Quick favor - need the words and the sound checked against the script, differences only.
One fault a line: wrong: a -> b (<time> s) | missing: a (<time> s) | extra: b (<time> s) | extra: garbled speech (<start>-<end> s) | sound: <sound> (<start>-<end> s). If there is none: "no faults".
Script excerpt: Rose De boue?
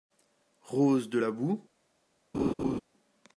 extra: la (1.2 s)
sound: laugh (2.3-2.8 s)